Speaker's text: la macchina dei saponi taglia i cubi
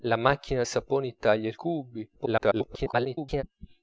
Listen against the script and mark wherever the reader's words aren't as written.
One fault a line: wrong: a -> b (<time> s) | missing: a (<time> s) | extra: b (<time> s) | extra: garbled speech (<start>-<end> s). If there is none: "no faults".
missing: dei (0.6 s)
extra: garbled speech (2.2-3.4 s)